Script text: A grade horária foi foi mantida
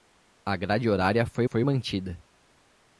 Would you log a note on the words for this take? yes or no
no